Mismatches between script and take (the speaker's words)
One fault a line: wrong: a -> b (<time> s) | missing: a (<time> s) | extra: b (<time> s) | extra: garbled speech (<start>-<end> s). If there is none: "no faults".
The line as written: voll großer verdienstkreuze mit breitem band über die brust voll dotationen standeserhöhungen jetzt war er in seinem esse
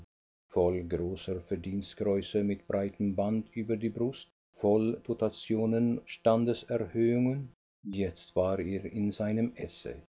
no faults